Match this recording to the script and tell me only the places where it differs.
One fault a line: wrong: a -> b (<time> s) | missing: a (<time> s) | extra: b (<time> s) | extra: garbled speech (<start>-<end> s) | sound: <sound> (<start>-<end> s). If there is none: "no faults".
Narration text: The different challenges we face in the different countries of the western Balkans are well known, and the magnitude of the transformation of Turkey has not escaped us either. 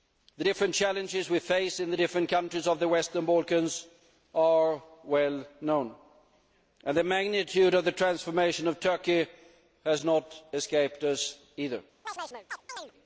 sound: chirp (12.0-12.9 s)